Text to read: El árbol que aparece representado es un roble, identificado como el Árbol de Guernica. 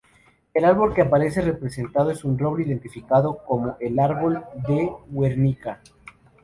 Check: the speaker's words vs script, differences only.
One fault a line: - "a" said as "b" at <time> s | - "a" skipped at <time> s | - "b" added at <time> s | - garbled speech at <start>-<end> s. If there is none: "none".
none